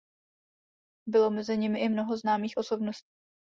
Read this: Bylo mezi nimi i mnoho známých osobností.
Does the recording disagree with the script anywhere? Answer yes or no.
no